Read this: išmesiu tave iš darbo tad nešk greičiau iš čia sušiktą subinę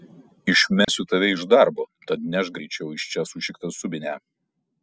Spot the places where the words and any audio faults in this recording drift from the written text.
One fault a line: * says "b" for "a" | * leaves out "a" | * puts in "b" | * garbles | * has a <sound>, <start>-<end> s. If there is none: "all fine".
* has a dropout, 0.8-0.9 s